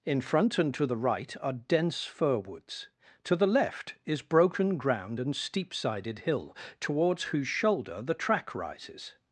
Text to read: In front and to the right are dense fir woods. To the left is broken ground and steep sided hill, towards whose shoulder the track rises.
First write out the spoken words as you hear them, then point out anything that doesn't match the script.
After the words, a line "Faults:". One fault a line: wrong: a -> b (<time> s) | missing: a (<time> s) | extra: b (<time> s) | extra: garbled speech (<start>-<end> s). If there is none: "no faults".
In front and to the right are dense fir woods. To the left is broken ground and steep sided hill, towards whose shoulder the track rises.
Faults:
no faults